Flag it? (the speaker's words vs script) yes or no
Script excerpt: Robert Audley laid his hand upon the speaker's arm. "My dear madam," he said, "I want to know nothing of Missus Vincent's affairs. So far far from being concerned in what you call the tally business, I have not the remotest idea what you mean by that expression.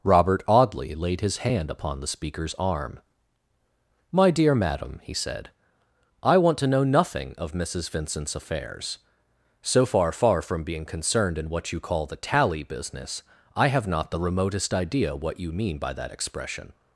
no